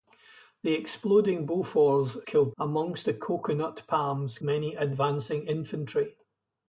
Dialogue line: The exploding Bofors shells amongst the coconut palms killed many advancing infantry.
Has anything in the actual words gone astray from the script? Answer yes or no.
yes